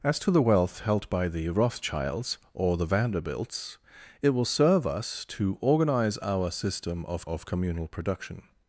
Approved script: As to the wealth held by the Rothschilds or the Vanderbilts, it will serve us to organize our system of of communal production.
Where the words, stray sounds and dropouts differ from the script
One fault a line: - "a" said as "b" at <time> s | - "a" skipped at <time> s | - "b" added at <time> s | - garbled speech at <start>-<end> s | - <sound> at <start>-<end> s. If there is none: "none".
none